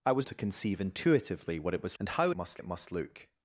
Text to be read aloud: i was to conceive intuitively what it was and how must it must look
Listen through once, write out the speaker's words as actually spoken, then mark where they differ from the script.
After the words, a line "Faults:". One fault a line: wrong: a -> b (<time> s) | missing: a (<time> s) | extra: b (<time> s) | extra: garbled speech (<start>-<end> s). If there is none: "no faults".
i was to conceive intuitively what it was and how must it must look
Faults:
no faults